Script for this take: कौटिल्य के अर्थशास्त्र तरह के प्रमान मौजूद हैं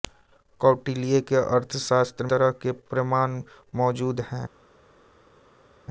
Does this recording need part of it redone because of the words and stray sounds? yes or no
no